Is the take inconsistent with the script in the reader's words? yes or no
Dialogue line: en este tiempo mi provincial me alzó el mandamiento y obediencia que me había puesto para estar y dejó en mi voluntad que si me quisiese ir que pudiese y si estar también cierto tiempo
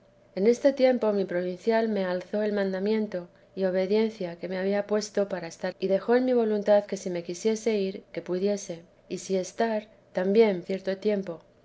no